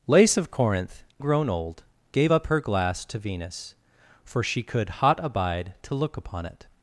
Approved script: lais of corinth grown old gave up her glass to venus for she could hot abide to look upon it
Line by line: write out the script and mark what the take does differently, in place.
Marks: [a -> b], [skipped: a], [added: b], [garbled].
lais of corinth grown old gave up her glass to venus for she could hot abide to look upon it